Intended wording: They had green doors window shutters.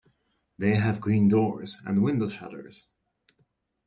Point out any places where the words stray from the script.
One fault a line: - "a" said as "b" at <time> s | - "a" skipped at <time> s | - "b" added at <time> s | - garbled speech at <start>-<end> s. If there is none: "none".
- "had" said as "have" at 0.8 s
- "and" added at 1.9 s